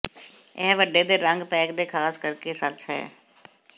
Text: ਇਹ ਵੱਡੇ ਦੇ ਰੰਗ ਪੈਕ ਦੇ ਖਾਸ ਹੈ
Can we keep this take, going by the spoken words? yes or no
no